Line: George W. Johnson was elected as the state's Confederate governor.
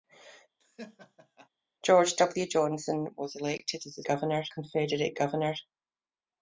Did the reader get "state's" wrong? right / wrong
wrong